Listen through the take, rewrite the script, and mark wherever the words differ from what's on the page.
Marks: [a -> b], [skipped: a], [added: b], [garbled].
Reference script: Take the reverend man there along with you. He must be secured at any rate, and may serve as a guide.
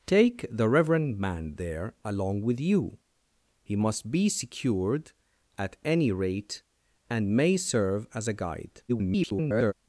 Take the reverend man there along with you. He must be secured at any rate, and may serve as a guide. [garbled]